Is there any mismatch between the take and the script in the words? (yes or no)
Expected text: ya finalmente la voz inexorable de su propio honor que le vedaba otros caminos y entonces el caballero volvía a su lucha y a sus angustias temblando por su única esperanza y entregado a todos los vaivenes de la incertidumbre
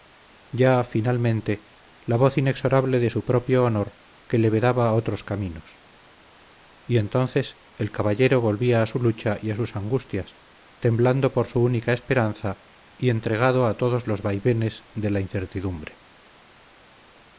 no